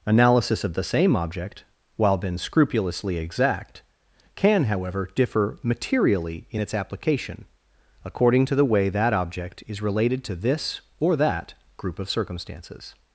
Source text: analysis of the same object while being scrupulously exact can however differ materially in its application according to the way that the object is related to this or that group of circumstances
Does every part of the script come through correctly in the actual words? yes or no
no